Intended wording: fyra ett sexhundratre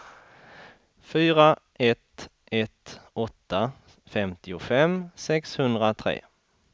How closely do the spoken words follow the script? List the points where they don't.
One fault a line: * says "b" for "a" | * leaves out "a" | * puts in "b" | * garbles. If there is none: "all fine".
* puts in "ett åtta femtiofem"